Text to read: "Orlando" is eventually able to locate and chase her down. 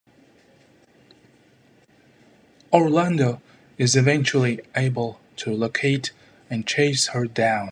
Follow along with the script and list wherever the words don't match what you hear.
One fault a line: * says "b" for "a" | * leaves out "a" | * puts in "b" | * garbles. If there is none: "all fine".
all fine